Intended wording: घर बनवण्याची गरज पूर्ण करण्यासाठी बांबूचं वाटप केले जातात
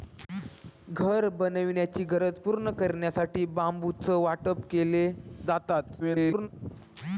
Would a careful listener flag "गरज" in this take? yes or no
no